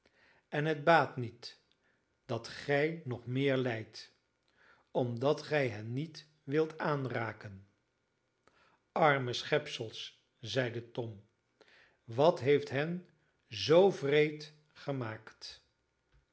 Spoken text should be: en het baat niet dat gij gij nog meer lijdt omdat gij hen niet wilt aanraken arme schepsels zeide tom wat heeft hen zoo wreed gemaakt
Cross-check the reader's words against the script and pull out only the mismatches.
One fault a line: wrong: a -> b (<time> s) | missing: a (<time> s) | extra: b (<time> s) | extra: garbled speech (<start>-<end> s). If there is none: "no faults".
missing: gij (3.0 s)